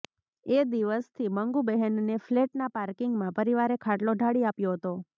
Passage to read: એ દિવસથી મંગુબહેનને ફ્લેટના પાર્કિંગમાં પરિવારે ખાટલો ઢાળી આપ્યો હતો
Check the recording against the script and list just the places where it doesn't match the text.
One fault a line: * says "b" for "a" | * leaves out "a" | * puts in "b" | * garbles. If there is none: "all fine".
all fine